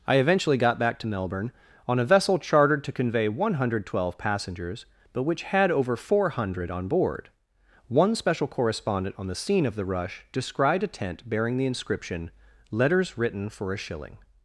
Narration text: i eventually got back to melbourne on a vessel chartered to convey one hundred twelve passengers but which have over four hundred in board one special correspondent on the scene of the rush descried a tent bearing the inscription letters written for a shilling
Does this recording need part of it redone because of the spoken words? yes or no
yes